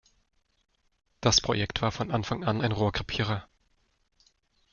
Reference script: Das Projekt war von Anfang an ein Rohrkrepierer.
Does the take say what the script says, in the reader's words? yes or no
yes